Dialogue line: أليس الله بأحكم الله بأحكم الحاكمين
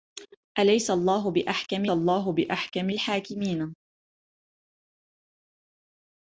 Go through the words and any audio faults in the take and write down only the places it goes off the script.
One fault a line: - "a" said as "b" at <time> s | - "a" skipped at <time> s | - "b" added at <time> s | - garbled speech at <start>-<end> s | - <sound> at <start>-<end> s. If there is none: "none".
none